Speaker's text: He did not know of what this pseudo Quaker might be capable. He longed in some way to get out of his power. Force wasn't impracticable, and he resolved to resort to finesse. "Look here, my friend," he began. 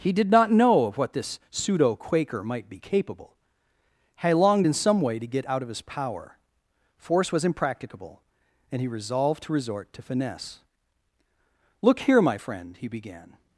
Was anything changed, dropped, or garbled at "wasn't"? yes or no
yes